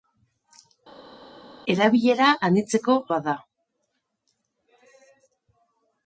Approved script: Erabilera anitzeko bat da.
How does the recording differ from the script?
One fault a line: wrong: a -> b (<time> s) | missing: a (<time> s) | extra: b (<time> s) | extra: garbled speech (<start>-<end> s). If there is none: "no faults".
no faults